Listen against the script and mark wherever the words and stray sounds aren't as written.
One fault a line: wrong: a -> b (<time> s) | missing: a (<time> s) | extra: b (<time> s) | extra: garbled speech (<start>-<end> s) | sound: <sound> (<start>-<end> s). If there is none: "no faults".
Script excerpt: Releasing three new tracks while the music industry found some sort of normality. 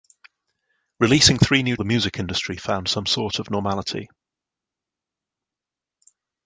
missing: tracks while (1.8 s)